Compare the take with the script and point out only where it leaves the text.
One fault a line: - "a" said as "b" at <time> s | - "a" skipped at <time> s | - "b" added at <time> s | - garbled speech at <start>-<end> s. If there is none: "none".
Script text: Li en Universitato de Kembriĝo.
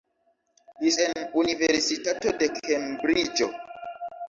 none